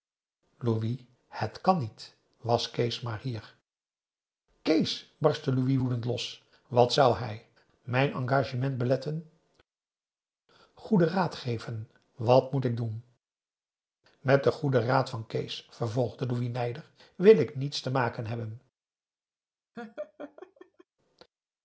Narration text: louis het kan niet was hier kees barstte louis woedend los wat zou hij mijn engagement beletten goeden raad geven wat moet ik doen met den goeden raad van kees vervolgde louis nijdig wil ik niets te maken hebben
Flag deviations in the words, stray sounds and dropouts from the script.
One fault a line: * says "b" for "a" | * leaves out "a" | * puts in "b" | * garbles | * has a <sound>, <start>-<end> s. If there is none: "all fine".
* puts in "kees maar"
* has a laugh, 19.7-20.8 s